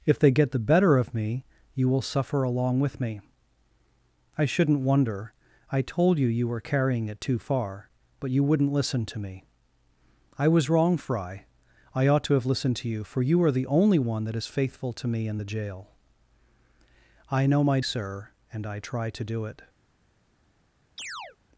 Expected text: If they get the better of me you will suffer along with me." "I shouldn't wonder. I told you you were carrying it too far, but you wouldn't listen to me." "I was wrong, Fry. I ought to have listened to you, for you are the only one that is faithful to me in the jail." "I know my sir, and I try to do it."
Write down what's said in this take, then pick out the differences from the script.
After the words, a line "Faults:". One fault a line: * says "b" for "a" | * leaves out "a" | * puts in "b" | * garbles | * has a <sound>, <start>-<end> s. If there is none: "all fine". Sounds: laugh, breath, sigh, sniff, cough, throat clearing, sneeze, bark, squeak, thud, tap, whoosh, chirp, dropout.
If they get the better of me you will suffer along with me." "I shouldn't wonder. I told you you were carrying it too far, but you wouldn't listen to me." "I was wrong, Fry. I ought to have listened to you, for you are the only one that is faithful to me in the jail." "I know my sir, and I try to do it."
Faults:
* has a chirp, 21.0-21.4 s